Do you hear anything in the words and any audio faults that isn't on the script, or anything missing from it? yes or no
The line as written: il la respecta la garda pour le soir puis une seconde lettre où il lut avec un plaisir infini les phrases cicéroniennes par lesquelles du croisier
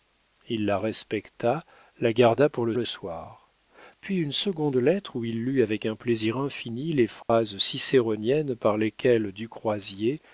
yes